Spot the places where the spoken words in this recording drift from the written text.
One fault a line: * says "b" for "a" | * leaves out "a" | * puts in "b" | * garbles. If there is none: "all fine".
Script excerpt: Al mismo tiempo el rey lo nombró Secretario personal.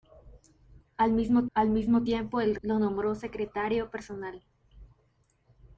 * puts in "al mismo"
* leaves out "rey"